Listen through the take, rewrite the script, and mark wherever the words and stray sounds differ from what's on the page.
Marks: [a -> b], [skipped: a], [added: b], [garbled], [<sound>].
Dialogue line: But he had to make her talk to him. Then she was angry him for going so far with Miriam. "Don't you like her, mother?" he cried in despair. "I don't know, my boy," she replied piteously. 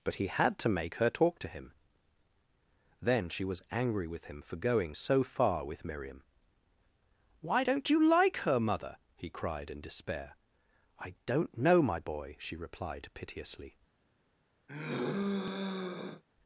But he had to make her talk to him. Then she was angry [added: with] him for going so far with Miriam. [added: Why] "Don't you like her, mother?" he cried in despair. "I don't know, my boy," she replied piteously. [sigh]